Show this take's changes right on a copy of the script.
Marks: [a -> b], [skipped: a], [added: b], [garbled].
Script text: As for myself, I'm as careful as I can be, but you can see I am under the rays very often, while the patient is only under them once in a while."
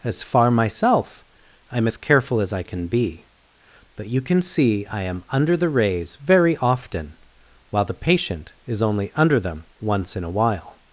As [for -> far] myself, I'm as careful as I can be, but you can see I am under the rays very often, while the patient is only under them once in a while."